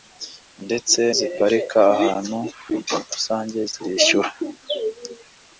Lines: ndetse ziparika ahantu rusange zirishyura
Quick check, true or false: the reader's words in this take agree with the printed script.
true